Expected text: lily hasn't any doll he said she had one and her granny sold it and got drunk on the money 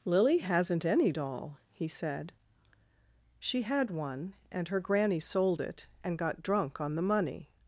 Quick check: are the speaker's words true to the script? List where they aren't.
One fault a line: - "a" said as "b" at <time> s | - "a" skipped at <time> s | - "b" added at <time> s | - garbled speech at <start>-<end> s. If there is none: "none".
none